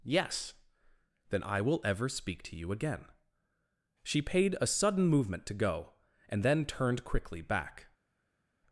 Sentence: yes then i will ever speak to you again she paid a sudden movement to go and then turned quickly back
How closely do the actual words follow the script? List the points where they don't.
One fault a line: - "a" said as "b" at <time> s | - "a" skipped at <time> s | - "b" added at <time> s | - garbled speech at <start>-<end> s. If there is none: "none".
none